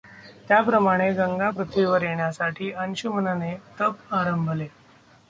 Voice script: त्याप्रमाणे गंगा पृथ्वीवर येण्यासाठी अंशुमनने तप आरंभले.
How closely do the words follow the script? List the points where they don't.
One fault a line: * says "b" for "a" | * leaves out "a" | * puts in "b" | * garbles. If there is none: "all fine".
all fine